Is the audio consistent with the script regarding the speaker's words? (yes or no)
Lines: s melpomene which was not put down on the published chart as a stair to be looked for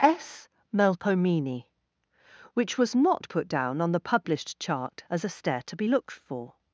yes